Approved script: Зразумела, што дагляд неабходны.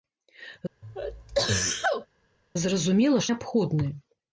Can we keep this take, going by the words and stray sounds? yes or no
no